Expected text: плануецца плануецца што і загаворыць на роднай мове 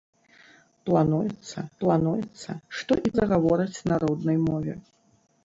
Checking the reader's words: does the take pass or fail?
pass